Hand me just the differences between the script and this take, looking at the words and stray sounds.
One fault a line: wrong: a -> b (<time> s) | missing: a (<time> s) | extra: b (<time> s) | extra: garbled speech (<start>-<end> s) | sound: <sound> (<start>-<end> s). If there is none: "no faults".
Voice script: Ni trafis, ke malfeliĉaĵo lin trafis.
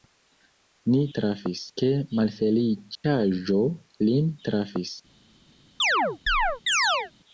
sound: dropout (3.0-3.0 s)
sound: chirp (5.8-7.1 s)